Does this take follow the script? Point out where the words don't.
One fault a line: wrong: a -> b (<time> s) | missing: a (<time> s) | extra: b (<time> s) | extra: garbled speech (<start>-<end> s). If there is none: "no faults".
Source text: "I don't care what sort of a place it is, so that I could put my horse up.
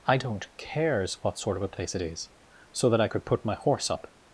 wrong: care -> cares (0.6 s)